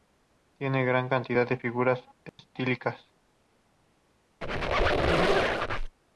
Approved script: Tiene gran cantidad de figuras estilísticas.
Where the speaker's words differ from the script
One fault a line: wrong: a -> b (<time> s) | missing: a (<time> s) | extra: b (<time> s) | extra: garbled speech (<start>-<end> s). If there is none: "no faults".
no faults